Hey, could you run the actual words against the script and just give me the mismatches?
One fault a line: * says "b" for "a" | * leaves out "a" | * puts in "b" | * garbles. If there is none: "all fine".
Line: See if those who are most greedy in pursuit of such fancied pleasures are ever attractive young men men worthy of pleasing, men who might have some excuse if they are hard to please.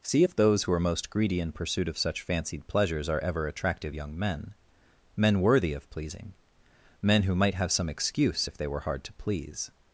* says "were" for "are"